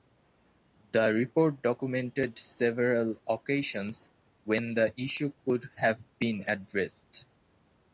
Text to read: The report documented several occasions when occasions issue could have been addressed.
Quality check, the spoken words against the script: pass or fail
fail